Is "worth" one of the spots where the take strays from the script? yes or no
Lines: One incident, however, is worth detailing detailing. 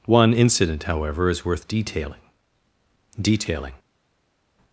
no